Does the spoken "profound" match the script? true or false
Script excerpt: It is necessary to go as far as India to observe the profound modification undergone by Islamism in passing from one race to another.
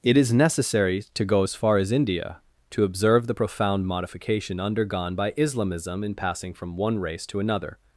true